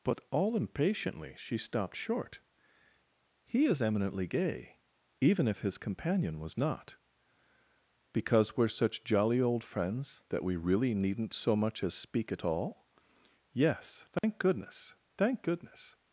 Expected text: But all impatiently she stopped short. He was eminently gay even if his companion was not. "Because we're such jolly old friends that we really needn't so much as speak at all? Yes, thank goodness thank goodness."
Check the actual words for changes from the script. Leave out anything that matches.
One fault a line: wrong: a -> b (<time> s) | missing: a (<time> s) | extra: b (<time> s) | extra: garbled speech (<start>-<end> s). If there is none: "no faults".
wrong: was -> is (3.6 s)